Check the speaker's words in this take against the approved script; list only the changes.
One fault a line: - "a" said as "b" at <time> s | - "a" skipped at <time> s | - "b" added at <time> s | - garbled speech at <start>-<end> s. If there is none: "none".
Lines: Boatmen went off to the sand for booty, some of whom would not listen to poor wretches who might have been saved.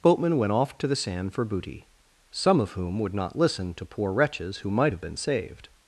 none